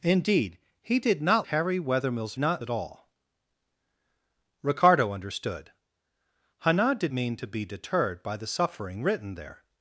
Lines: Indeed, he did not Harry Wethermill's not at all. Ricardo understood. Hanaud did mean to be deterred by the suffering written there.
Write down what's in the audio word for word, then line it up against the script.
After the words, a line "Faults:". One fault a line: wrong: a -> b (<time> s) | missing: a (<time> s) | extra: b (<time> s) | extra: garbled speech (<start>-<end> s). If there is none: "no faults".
Indeed, he did not Harry Wethermill's not at all. Ricardo understood. Hanaud did mean to be deterred by the suffering written there.
Faults:
no faults